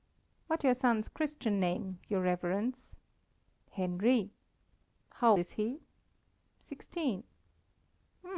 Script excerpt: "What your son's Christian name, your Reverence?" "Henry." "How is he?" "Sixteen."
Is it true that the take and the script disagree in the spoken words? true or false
false